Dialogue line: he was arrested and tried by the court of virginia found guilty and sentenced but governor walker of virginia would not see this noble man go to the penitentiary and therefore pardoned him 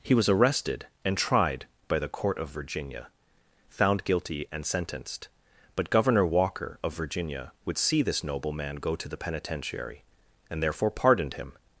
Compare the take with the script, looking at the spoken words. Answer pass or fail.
fail